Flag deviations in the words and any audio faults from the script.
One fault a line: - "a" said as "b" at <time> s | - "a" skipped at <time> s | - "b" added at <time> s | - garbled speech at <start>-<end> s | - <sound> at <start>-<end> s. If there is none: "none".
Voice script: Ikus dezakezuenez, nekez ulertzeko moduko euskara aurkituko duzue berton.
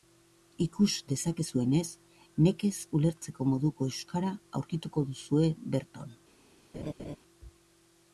- laugh at 6.7-7.2 s